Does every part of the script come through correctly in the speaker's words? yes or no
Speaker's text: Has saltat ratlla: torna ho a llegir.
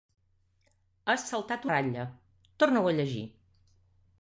yes